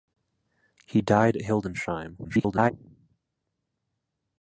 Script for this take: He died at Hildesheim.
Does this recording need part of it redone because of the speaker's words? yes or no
yes